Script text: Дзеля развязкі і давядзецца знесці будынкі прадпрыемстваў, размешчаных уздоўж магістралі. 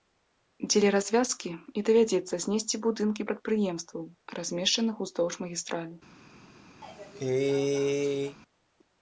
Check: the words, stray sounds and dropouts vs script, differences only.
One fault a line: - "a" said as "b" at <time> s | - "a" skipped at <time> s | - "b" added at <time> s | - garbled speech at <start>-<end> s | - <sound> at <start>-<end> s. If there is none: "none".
- cough at 6.8-8.4 s